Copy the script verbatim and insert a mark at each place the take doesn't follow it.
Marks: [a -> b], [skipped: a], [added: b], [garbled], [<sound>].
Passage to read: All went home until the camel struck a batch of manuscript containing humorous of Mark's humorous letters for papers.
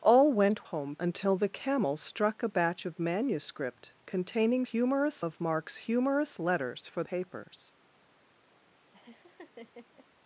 All went home until the camel struck a batch of manuscript containing humorous of Mark's humorous letters for papers. [laugh]